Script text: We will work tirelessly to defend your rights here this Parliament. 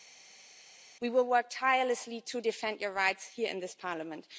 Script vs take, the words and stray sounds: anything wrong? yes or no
yes